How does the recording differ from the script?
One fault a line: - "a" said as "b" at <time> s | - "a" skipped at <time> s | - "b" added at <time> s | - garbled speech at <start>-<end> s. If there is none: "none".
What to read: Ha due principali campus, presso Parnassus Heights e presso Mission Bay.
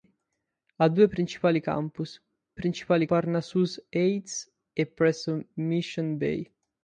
- "presso" said as "principali" at 2.5 s